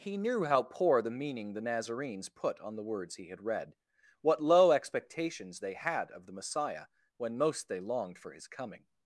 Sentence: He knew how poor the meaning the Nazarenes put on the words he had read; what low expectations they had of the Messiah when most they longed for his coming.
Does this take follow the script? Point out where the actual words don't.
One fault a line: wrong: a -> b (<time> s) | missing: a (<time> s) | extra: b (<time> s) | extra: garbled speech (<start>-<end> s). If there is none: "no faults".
no faults